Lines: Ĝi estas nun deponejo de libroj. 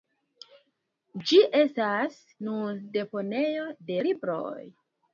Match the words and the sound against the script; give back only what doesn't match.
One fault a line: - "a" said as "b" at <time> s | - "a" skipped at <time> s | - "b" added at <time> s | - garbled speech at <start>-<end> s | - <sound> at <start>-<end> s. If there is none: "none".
none